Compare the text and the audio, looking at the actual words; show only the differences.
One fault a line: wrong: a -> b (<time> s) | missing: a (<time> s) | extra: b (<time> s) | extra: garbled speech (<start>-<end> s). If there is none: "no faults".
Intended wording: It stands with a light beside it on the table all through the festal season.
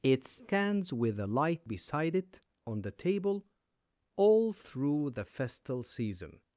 no faults